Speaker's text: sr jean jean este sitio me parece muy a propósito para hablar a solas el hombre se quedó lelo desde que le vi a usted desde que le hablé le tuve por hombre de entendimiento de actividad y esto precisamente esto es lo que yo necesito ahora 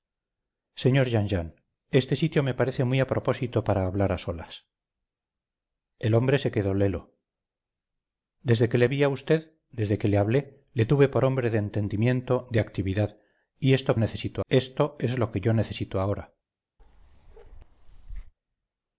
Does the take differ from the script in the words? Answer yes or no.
yes